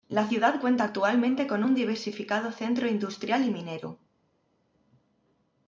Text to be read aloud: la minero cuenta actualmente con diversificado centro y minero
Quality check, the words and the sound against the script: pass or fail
fail